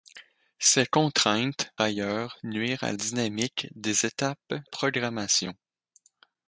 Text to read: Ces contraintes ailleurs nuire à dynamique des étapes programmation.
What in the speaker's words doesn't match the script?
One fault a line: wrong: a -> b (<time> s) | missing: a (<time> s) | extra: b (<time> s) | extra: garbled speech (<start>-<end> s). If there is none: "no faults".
no faults